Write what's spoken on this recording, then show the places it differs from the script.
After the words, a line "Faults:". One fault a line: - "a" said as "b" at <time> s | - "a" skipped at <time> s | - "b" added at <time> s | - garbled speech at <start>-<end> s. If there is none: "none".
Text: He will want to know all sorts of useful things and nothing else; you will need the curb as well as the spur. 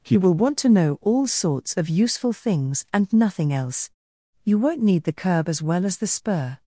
He will want to know all sorts of useful things and nothing else; you won't need the curb as well as the spur.
Faults:
- "will" said as "won't" at 4.6 s